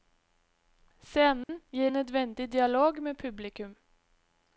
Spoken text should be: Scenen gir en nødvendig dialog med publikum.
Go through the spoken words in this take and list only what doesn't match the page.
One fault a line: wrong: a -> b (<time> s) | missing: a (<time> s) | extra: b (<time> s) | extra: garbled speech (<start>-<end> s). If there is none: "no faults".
missing: en (1.9 s)